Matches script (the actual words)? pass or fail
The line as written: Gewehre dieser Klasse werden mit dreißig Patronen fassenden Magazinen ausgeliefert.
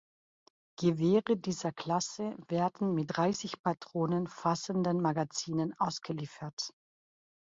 pass